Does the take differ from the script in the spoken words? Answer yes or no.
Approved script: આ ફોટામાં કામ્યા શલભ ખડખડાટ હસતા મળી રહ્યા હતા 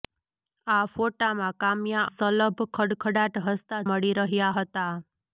no